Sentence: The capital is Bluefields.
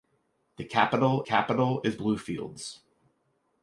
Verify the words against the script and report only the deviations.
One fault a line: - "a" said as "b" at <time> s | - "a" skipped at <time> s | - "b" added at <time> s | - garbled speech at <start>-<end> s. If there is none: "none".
- "capital" added at 1.2 s